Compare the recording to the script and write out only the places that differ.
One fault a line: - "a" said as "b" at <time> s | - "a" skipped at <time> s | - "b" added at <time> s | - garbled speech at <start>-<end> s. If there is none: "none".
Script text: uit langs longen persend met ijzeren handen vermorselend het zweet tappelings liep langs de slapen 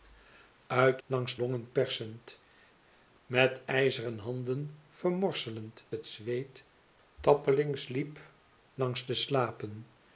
none